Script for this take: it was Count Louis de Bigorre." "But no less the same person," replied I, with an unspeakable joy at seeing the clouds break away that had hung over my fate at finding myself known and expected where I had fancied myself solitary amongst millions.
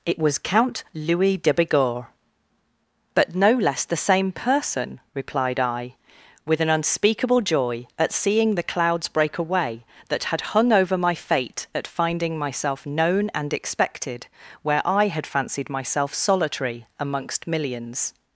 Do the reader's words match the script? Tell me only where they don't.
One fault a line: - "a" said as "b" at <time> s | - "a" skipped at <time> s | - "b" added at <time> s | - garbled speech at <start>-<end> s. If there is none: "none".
none